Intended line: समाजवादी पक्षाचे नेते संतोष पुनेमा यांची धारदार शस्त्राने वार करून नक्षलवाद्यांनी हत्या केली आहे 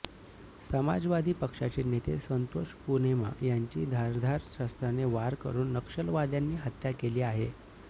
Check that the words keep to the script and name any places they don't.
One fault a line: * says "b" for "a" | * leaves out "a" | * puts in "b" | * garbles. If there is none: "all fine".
all fine